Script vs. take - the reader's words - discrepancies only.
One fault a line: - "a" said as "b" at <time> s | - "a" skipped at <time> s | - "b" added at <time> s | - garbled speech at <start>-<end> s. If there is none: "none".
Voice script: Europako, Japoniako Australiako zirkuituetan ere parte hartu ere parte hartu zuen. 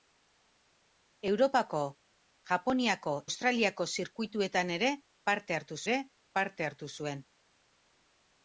none